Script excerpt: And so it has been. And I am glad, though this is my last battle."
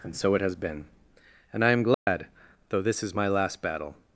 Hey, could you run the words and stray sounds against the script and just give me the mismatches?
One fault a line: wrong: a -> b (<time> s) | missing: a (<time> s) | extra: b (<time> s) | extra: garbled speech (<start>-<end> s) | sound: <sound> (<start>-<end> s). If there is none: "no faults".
sound: dropout (1.9-2.1 s)